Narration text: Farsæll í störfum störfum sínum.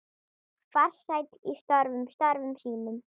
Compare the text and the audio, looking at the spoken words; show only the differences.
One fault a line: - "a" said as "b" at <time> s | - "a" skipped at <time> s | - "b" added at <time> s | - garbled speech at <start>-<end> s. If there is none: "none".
none